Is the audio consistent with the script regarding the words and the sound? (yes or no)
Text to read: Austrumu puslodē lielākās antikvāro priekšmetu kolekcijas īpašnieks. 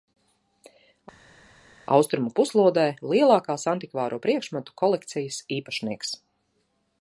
yes